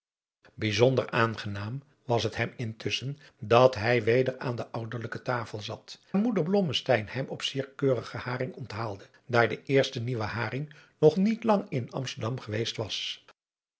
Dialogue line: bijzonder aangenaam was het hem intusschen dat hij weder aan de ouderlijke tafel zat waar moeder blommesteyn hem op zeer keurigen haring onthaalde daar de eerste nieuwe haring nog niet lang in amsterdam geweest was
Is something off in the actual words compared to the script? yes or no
yes